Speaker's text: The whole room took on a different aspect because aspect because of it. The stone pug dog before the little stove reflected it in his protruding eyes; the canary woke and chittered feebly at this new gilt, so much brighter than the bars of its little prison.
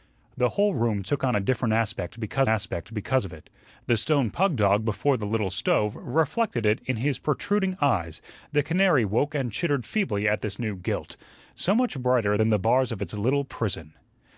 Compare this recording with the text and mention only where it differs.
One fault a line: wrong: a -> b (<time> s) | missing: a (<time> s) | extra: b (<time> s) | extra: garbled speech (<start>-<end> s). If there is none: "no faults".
no faults